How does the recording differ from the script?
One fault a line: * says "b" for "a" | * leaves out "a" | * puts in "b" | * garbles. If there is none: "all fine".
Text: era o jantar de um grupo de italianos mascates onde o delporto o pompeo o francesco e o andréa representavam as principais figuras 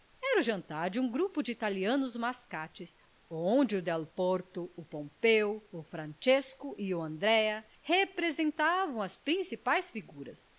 all fine